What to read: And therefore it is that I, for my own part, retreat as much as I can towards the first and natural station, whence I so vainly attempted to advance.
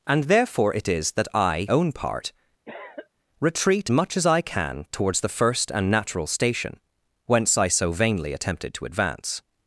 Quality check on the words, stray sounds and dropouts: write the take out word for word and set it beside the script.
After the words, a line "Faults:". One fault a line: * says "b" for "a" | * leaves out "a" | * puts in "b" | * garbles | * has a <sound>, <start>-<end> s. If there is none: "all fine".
And therefore it is that I, own part, retreat much as I can towards the first and natural station, whence I so vainly attempted to advance.
Faults:
* leaves out "for my"
* has a cough, 2.6-3.1 s
* leaves out "as"